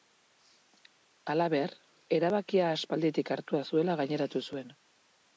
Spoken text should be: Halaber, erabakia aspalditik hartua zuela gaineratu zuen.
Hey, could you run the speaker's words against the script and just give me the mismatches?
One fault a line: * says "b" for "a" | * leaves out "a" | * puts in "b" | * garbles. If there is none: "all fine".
all fine